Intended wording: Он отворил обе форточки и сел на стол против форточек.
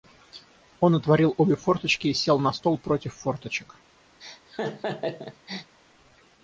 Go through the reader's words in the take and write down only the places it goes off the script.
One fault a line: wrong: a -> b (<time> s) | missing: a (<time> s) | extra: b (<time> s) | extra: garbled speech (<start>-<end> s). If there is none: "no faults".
no faults